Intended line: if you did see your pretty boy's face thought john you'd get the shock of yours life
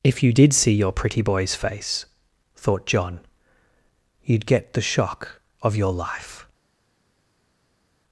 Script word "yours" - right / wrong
wrong